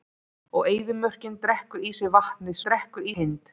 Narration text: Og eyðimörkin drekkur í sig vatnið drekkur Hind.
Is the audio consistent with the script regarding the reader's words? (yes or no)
yes